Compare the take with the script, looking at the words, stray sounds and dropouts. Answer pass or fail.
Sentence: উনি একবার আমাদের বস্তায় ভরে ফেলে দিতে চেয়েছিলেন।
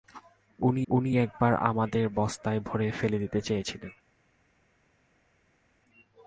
fail